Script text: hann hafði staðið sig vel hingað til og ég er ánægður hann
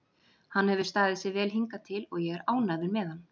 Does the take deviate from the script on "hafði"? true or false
true